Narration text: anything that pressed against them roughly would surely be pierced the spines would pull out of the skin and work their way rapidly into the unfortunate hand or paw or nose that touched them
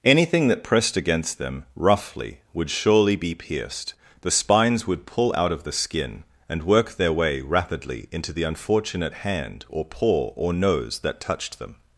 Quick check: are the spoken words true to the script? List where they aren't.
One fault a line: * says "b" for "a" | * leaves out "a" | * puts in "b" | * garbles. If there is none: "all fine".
all fine